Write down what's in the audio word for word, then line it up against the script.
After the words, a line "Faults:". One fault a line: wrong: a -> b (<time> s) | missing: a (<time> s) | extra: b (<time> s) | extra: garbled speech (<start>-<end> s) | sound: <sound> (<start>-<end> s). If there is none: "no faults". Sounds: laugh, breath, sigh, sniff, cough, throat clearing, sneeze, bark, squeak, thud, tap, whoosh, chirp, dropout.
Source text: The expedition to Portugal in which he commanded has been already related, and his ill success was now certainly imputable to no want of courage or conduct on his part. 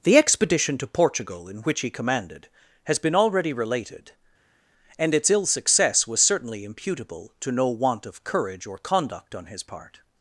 The expedition to Portugal in which he commanded has been already related, and its ill success was certainly imputable to no want of courage or conduct on his part.
Faults:
wrong: his -> its (5.1 s)
missing: now (6.2 s)